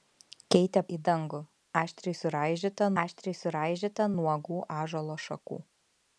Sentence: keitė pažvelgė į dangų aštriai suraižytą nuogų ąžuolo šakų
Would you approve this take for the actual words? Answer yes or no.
no